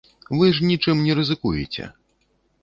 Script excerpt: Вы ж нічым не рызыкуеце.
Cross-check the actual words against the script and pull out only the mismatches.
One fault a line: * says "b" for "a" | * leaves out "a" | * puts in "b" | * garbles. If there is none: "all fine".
all fine